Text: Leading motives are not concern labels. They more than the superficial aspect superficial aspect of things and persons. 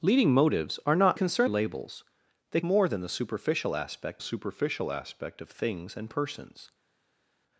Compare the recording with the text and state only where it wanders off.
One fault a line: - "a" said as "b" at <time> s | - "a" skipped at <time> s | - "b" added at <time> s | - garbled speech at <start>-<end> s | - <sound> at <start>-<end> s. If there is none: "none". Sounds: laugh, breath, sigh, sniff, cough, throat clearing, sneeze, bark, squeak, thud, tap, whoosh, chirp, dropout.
none